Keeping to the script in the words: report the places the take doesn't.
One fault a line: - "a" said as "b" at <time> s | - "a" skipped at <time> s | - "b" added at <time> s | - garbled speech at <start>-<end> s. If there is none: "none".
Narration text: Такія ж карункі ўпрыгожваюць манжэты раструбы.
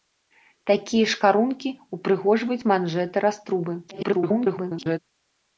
- garbled speech at 3.9-5.0 s